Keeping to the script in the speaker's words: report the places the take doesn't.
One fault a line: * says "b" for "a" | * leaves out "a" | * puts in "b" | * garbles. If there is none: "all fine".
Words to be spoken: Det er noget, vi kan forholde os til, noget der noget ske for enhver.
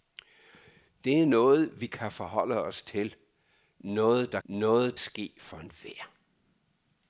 all fine